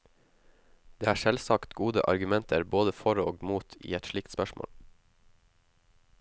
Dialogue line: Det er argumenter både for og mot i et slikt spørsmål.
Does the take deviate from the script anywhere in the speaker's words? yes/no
yes